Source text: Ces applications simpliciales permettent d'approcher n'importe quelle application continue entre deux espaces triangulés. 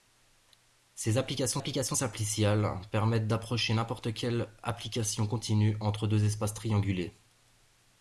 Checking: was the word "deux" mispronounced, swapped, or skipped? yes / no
no